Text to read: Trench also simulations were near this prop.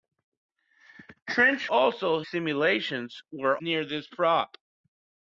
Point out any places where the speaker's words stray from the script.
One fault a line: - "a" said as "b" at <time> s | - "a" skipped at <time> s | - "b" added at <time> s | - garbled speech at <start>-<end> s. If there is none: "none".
none